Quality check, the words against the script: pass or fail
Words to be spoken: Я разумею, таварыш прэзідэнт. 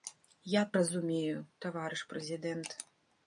pass